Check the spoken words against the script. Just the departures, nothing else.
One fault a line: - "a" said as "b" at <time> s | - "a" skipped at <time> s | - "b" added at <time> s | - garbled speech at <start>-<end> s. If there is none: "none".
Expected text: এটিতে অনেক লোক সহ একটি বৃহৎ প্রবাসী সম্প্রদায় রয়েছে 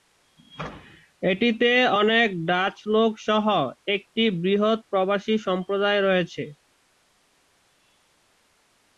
- "ডাচ" added at 2.5 s